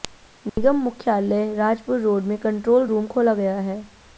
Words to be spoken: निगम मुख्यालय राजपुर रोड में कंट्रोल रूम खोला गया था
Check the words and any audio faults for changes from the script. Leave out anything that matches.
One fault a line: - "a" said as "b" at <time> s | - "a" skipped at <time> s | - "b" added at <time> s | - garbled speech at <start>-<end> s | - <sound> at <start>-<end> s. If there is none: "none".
- dropout at 0.5-0.6 s
- "था" said as "है" at 3.6 s